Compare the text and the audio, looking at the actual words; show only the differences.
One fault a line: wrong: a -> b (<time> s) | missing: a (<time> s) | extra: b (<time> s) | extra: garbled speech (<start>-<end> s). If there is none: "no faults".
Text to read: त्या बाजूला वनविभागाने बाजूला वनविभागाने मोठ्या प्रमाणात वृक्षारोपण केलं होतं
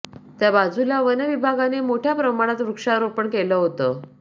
missing: बाजूला वनविभागाने (1.8 s)